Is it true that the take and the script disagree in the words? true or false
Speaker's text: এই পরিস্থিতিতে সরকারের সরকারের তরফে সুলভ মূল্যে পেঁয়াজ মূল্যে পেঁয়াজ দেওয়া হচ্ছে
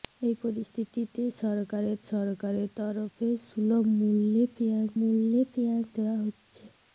false